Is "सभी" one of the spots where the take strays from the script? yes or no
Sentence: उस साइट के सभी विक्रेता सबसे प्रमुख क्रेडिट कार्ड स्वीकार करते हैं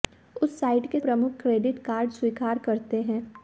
yes